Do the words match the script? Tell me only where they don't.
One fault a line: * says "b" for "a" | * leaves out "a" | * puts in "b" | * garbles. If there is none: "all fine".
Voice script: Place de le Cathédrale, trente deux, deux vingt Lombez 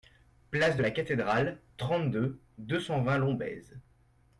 * says "la" for "le"
* puts in "cent"